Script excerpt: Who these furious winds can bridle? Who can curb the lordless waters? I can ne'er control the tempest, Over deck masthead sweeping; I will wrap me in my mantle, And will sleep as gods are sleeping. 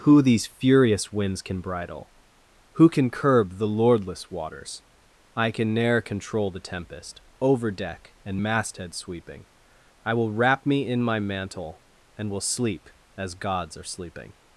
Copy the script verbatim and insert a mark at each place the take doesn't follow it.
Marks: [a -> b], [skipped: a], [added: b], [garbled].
Who these furious winds can bridle? Who can curb the lordless waters? I can ne'er control the tempest, Over deck [added: and] masthead sweeping; I will wrap me in my mantle, And will sleep as gods are sleeping.